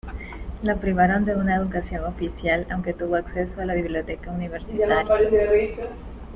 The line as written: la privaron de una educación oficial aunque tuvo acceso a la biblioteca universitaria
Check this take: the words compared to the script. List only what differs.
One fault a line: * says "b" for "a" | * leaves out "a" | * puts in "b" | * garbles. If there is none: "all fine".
all fine